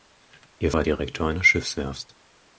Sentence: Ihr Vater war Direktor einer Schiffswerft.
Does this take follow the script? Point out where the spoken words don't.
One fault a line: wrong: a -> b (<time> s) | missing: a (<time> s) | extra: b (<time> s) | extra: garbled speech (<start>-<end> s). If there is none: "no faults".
missing: Vater (0.7 s)